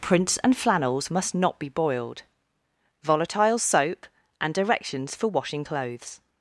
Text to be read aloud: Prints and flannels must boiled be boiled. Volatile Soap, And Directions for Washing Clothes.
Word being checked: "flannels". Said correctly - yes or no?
yes